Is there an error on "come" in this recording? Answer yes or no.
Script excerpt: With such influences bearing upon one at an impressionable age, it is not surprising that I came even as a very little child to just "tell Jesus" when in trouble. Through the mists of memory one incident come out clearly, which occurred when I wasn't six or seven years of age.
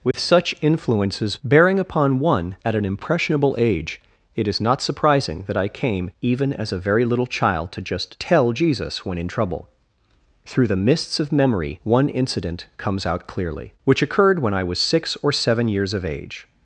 yes